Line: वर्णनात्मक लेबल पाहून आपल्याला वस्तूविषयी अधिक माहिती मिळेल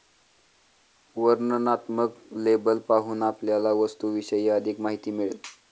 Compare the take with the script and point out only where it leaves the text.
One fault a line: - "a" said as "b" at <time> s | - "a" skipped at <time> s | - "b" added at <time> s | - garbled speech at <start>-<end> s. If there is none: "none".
none